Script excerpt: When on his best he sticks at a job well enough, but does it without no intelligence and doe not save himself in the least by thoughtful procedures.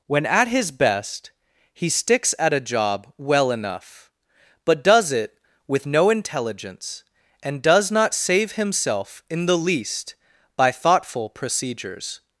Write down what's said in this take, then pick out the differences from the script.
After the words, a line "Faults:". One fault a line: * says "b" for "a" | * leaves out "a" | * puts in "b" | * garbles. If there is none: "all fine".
When at his best he sticks at a job well enough, but does it with no intelligence and does not save himself in the least by thoughtful procedures.
Faults:
* says "at" for "on"
* says "with" for "without"
* says "does" for "doe"